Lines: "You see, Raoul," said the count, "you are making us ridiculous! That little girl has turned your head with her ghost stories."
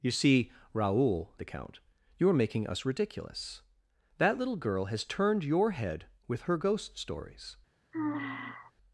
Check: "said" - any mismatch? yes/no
yes